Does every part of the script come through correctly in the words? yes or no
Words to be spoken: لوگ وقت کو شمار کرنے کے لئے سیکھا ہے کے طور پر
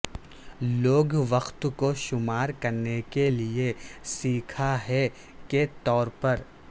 yes